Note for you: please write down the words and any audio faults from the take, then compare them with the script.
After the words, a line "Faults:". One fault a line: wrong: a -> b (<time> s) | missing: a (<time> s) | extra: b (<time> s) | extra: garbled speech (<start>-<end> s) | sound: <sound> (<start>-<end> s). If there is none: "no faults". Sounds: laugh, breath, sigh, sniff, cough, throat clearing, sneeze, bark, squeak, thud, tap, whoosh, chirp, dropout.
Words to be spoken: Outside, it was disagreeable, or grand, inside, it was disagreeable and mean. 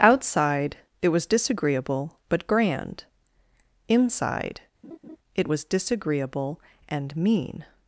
Outside, it was disagreeable, but grand, inside, it was disagreeable and mean.
Faults:
wrong: or -> but (2.3 s)
sound: laugh (4.8-5.2 s)